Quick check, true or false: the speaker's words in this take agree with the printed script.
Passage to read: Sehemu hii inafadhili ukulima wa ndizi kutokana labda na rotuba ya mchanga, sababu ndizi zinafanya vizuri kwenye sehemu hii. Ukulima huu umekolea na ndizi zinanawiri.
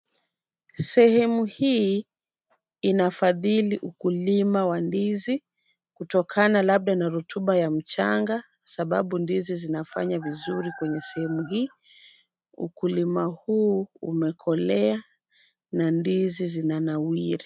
true